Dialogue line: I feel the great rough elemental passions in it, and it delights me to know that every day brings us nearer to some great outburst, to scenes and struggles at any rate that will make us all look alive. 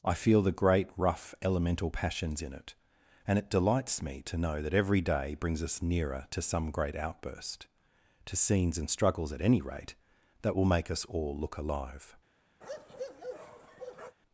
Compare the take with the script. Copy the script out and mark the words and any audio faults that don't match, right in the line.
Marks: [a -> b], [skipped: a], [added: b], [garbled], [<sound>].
I feel the great rough elemental passions in it, and it delights me to know that every day brings us nearer to some great outburst, to scenes and struggles at any rate that will make us all look alive. [bark]